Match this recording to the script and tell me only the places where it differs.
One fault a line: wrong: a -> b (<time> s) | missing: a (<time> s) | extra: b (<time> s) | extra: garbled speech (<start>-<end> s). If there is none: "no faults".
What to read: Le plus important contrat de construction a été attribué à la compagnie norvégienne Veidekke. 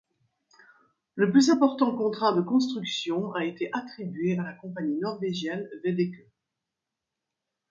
no faults